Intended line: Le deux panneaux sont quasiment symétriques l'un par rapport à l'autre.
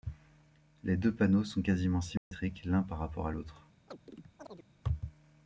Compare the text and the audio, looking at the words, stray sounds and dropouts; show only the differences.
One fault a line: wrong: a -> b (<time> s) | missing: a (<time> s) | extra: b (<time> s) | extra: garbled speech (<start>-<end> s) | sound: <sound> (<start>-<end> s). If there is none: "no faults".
wrong: Le -> Les (0.8 s)
sound: dropout (2.2-2.3 s)
sound: chirp (3.9-4.7 s)